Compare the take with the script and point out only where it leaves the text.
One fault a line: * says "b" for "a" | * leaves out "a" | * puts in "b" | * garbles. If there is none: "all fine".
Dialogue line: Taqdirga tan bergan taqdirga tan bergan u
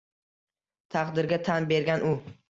* leaves out "taqdirga tan bergan"